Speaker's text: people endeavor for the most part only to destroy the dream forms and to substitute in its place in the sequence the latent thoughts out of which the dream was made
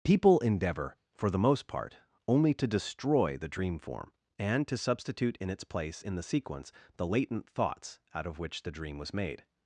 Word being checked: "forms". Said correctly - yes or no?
no